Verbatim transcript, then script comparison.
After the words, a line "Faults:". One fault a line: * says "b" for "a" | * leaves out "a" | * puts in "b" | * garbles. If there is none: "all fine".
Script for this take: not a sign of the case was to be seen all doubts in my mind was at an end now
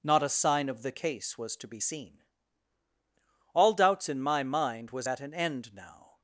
not a sign of the case was to be seen all doubts in my mind was at an end now
Faults:
all fine